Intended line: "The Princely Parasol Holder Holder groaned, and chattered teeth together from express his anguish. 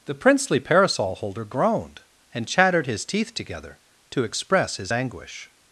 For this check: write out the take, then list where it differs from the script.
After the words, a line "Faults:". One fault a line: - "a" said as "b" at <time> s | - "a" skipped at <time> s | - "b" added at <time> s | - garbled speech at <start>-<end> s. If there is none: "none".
"The Princely Parasol Holder groaned, and chattered his teeth together to express his anguish.
Faults:
- "Holder" skipped at 1.4 s
- "his" added at 2.9 s
- "from" said as "to" at 4.1 s